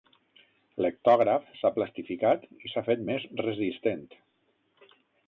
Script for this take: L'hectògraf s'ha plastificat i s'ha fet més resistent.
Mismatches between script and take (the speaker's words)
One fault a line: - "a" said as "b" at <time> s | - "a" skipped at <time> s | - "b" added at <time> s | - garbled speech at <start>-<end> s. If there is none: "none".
none